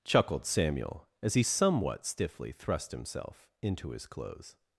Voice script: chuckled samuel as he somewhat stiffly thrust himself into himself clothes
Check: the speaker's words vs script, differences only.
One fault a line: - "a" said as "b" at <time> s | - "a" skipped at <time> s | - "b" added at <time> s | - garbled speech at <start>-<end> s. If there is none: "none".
- "himself" said as "his" at 3.9 s